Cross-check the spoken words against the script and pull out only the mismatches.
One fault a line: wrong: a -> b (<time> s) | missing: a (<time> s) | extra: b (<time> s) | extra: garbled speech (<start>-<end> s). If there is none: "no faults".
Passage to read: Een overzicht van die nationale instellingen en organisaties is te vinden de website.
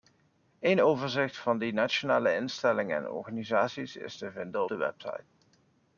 no faults